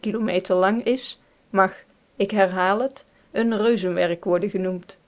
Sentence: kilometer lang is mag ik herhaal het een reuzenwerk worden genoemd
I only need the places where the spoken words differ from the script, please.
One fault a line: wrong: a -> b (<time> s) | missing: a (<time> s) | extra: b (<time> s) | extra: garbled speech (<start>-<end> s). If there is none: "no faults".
no faults